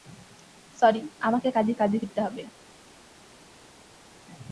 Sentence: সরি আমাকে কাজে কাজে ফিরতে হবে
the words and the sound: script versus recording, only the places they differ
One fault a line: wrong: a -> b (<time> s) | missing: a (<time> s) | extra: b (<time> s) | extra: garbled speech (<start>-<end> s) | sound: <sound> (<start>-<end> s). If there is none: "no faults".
no faults